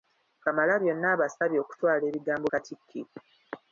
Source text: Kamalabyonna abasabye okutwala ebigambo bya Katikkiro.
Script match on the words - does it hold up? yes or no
no